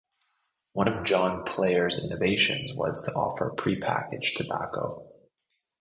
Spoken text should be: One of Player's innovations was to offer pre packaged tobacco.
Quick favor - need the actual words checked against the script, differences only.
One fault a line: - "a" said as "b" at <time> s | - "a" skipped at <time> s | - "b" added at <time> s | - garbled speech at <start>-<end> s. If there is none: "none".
- "John" added at 1.0 s